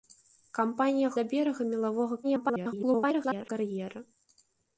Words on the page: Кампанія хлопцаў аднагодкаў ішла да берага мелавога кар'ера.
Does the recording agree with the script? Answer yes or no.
no